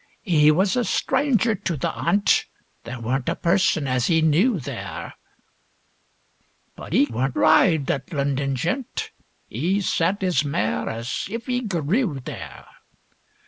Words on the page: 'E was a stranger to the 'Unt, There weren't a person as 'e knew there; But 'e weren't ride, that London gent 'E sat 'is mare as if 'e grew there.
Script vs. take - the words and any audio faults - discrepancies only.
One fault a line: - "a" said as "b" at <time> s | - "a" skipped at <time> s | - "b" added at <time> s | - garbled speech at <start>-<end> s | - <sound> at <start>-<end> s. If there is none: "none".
none